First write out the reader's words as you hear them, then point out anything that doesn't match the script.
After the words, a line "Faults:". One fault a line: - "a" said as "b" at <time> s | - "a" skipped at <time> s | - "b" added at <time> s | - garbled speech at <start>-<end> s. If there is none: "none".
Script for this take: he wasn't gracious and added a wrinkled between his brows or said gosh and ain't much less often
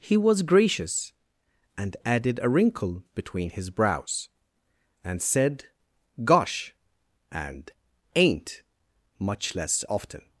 he was gracious and added a wrinkle between his brows and said gosh and ain't much less often
Faults:
- "wasn't" said as "was" at 0.2 s
- "wrinkled" said as "wrinkle" at 2.5 s
- "or" said as "and" at 5.0 s